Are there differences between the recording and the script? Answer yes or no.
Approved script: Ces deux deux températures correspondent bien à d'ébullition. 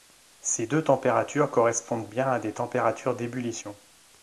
yes